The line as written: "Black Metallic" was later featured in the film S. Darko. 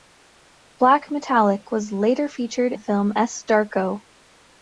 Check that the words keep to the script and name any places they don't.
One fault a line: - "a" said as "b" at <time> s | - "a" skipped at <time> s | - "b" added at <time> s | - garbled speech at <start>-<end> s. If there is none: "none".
- "in" skipped at 2.7 s